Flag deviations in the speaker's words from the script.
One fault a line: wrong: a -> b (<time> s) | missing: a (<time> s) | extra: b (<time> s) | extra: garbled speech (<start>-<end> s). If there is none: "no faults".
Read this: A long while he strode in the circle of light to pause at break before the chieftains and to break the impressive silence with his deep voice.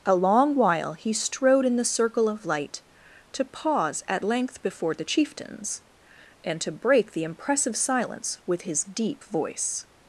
wrong: break -> length (4.2 s)